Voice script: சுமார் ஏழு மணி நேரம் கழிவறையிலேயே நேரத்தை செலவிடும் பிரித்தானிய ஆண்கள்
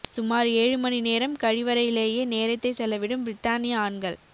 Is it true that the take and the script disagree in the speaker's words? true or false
false